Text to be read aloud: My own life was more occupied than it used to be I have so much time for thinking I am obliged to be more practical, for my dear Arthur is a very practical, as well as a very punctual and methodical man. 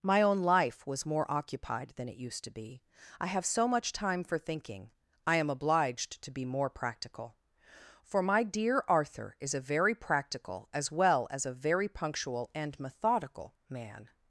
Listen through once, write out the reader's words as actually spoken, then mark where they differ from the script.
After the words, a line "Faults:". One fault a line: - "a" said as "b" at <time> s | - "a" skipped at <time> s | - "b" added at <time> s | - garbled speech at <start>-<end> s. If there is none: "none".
My own life was more occupied than it used to be I have so much time for thinking I am obliged to be more practical, for my dear Arthur is a very practical, as well as a very punctual and methodical man.
Faults:
none